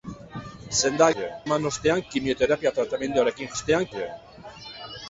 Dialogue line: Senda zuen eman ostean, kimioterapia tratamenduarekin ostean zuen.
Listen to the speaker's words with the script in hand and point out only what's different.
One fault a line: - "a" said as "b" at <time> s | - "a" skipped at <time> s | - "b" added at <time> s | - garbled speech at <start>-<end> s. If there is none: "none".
none